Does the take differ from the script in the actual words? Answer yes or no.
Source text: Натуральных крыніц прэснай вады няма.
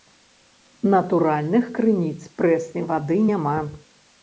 no